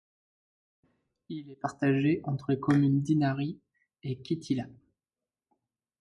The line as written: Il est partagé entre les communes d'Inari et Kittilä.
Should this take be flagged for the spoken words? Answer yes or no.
no